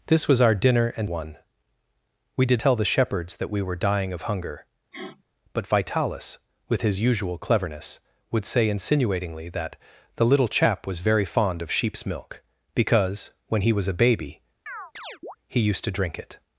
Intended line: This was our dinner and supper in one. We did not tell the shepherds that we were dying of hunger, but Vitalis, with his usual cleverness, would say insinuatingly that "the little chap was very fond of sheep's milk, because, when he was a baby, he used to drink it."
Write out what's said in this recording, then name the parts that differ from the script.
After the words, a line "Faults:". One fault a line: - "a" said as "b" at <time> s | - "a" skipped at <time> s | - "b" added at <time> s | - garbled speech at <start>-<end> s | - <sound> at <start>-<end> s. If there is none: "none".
This was our dinner and one. We did tell the shepherds that we were dying of hunger, but Vitalis, with his usual cleverness, would say insinuatingly that "the little chap was very fond of sheep's milk, because, when he was a baby, he used to drink it."
Faults:
- "supper in" skipped at 1.1 s
- "not" skipped at 2.6 s
- sniff at 4.9-5.2 s
- chirp at 14.7-15.4 s